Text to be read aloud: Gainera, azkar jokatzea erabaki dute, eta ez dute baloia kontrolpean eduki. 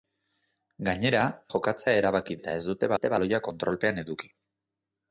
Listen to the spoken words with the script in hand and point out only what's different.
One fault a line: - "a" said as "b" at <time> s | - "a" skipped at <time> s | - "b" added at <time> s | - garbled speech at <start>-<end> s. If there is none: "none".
- "azkar" skipped at 1.2 s
- "dute" skipped at 2.4 s
- "dute" added at 3.0 s